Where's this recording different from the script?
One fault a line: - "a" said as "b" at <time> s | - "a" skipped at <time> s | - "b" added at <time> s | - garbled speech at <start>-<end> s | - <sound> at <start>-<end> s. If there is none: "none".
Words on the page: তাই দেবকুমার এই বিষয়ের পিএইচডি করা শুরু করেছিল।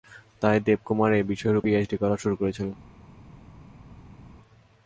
none